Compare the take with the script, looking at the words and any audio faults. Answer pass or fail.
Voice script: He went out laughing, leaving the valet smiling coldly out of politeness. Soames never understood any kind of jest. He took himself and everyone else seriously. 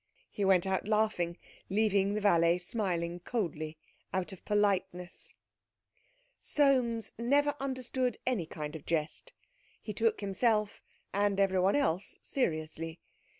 pass